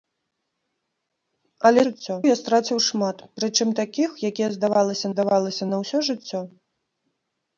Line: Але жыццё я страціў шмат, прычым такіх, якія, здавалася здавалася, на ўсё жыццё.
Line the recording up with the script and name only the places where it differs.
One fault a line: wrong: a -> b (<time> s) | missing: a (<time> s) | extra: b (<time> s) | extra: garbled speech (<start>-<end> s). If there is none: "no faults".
no faults